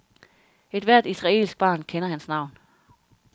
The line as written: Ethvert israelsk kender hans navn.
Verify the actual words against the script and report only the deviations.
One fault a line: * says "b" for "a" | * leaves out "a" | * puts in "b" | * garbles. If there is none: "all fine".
* puts in "barn"